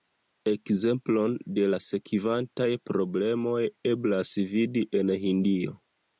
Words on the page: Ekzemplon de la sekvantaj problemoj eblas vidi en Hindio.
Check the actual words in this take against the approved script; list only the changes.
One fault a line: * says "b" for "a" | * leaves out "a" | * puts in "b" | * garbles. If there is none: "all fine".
all fine